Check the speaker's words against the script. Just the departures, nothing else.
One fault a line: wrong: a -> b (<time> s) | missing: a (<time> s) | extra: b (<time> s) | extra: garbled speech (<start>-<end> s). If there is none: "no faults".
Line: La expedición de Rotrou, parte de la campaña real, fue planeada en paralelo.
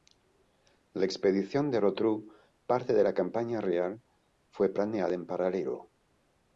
no faults